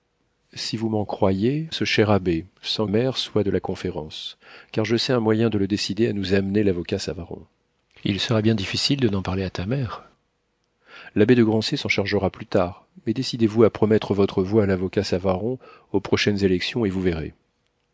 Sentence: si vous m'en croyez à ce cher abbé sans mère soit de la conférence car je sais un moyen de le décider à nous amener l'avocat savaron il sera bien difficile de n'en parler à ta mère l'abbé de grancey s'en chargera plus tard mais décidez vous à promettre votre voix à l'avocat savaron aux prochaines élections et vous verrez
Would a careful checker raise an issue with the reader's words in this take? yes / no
no